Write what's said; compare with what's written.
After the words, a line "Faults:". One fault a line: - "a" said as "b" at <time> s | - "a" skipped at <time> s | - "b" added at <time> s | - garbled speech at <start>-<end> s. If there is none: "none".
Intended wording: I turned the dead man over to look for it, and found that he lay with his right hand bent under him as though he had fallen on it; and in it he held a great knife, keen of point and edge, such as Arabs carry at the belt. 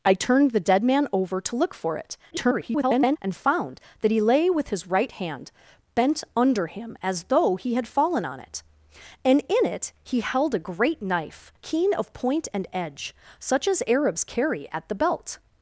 I turned the dead man over to look for it, [garbled] and found that he lay with his right hand bent under him as though he had fallen on it; and in it he held a great knife, keen of point and edge, such as Arabs carry at the belt.
Faults:
- garbled speech at 2.3-3.2 s